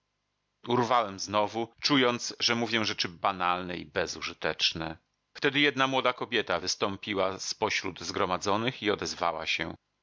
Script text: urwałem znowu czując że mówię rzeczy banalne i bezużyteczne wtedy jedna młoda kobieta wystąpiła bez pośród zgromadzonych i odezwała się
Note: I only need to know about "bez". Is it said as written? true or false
false